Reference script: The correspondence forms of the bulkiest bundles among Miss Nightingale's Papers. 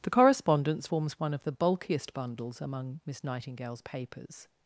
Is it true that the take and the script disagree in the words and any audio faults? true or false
true